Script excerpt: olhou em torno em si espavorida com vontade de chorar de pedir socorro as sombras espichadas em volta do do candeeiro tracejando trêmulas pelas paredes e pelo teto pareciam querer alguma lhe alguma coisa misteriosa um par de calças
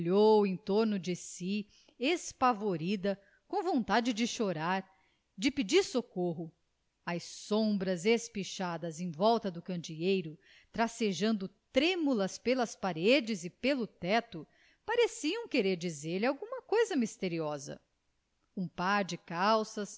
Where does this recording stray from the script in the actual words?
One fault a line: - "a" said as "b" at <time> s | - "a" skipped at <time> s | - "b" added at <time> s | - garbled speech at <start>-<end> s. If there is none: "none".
- "em" said as "de" at 1.0 s
- "do" skipped at 9.6 s
- "alguma" said as "dizer" at 15.8 s